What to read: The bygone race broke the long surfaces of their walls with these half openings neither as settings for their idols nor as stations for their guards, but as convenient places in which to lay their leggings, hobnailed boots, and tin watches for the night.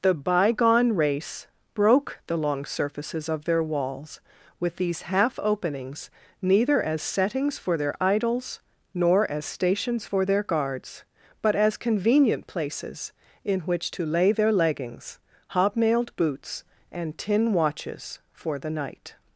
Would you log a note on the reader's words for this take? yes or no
no